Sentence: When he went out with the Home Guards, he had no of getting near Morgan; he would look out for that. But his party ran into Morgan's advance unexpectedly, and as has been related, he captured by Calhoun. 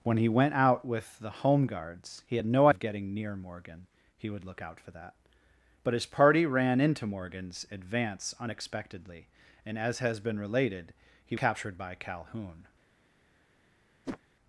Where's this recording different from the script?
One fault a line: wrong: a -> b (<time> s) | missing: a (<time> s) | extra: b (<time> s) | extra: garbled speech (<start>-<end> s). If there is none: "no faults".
no faults